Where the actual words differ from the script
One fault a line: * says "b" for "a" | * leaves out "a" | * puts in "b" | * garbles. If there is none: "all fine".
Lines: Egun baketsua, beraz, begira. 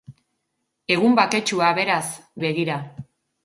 all fine